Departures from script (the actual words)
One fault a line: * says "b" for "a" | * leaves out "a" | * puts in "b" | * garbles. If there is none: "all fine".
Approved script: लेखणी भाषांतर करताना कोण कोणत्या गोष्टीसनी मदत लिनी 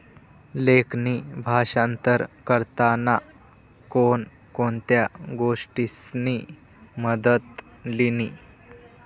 all fine